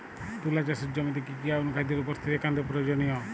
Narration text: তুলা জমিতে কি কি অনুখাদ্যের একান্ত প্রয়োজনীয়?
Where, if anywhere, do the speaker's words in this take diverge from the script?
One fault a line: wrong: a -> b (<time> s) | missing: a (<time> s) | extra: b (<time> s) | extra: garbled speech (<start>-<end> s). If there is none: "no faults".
extra: চাষের (0.6 s)
extra: উপস্থিতি (2.0 s)